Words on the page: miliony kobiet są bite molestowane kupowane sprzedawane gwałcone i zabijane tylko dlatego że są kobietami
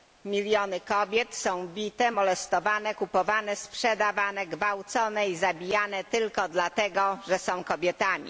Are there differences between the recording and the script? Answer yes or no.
no